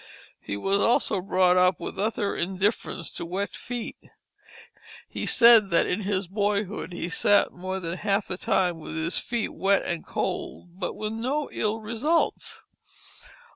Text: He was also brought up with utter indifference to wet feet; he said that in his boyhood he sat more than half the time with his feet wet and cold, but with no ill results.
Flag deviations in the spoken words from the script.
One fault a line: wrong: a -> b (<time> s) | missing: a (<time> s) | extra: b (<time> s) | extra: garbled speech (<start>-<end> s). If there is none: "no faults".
no faults